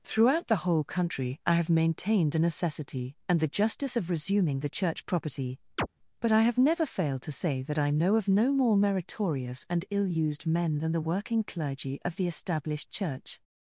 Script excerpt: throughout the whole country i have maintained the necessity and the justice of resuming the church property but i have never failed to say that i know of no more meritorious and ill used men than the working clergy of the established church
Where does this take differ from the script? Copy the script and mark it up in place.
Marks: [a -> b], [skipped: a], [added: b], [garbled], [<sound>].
throughout the whole country i have maintained the necessity and the justice of resuming the church property [chirp] but i have never failed to say that i know of no more meritorious and ill used men than the working clergy of the established church